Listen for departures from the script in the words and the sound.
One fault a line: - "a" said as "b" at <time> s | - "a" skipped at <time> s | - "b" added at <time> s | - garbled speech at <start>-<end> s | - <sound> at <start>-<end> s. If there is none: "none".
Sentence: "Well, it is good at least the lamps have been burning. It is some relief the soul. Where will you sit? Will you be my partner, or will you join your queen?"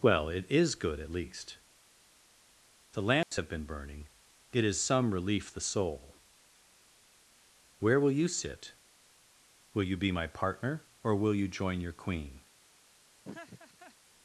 - dropout at 3.2-3.3 s
- laugh at 13.2-14.0 s